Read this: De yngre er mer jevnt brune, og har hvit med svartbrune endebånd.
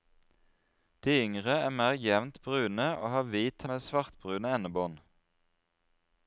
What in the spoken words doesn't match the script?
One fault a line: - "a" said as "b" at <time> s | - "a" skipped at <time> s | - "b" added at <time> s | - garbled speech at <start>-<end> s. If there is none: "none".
none